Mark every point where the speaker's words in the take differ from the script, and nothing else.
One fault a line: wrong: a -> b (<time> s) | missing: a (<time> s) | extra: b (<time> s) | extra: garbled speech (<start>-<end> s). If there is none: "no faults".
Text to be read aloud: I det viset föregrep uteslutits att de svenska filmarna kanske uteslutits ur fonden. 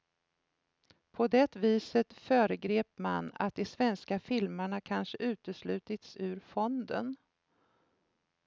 wrong: I -> På (1.1 s)
wrong: uteslutits -> man (3.0 s)